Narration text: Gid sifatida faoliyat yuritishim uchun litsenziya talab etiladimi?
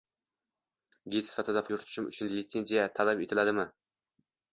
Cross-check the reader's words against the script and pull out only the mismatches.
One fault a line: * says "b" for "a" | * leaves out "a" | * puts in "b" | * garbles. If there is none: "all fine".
* leaves out "faoliyat"